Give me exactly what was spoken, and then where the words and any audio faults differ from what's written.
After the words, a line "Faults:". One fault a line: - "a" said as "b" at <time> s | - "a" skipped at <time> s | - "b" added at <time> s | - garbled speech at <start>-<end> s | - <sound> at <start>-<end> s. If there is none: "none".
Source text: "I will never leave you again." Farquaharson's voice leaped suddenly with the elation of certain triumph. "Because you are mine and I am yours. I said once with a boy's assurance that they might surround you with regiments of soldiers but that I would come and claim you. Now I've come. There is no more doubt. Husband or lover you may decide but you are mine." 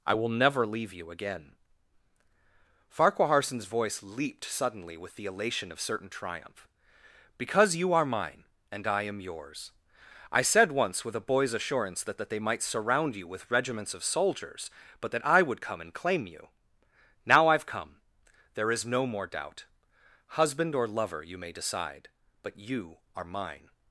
"I will never leave you again." Farquaharson's voice leaped suddenly with the elation of certain triumph. "Because you are mine and I am yours. I said once with a boy's assurance that that they might surround you with regiments of soldiers but that I would come and claim you. Now I've come. There is no more doubt. Husband or lover you may decide but you are mine."
Faults:
- "that" added at 12.2 s